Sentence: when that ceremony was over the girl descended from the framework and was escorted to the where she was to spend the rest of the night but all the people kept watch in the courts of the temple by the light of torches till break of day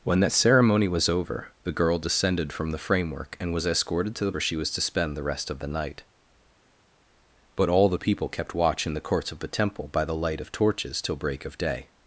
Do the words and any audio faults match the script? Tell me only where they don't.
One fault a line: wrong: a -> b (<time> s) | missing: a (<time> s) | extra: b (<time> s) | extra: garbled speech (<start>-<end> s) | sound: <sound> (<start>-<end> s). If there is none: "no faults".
no faults